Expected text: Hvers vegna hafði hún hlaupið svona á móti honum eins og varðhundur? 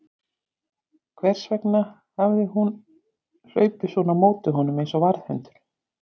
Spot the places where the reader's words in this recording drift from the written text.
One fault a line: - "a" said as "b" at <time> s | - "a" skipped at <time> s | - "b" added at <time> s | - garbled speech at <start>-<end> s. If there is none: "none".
none